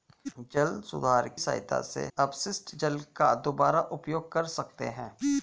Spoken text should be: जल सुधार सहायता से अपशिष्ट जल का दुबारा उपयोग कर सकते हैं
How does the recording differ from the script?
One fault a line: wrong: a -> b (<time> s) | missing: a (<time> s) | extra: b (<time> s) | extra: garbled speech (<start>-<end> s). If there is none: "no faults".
no faults